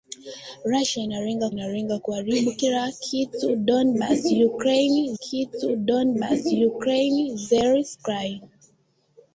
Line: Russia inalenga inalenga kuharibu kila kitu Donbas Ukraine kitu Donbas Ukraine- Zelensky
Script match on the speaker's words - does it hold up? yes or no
yes